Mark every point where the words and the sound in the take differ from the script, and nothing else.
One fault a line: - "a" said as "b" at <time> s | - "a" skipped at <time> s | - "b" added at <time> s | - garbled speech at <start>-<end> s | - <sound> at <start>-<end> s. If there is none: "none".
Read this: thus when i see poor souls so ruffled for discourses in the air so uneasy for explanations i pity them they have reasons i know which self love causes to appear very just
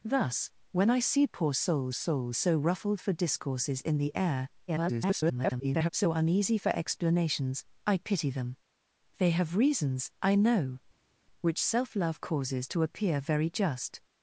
- "souls" added at 1.9 s
- garbled speech at 4.7-5.9 s